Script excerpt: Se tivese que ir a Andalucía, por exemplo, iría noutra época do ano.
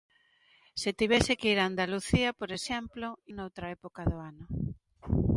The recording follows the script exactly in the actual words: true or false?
false